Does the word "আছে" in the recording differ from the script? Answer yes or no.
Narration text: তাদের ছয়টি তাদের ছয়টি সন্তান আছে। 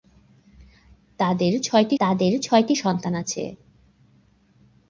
no